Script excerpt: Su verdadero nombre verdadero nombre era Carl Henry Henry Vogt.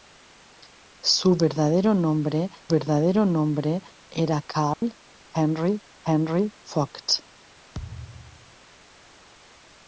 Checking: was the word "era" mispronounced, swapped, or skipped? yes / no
no